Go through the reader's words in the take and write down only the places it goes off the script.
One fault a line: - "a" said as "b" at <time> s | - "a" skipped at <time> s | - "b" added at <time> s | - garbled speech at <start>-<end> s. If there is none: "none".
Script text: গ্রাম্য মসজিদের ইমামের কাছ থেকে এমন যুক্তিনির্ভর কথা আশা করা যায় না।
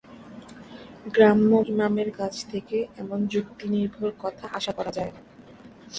- "মসজিদের" skipped at 1.5 s